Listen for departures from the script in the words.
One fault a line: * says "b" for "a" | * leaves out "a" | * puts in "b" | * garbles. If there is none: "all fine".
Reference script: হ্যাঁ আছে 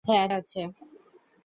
all fine